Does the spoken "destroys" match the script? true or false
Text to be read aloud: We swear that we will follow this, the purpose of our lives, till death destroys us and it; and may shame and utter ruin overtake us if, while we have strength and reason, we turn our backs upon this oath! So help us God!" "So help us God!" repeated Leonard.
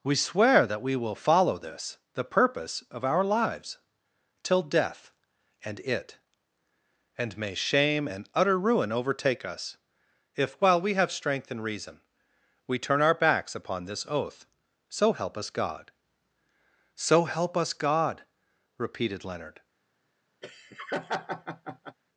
false